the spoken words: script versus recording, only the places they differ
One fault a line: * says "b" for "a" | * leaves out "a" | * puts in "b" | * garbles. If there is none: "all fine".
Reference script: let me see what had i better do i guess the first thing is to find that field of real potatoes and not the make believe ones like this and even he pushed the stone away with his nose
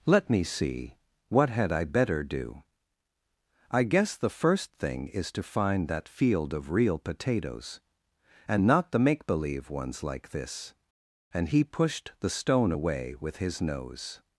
* leaves out "even"